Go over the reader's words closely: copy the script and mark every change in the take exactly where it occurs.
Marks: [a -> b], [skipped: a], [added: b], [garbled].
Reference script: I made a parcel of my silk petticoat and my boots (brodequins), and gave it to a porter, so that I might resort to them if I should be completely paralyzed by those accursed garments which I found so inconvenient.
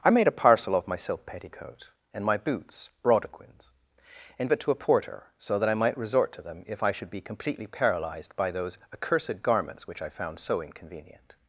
I made a parcel of my silk petticoat and my boots (brodequins), and [skipped: gave] it to a porter, so that I might resort to them if I should be completely paralyzed by those accursed garments which I found so inconvenient.